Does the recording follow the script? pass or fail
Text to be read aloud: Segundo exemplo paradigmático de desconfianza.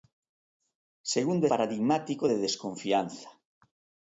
fail